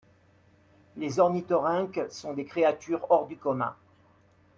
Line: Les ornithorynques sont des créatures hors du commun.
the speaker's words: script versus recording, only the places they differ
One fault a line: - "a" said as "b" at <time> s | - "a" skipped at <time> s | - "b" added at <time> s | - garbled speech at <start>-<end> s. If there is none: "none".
none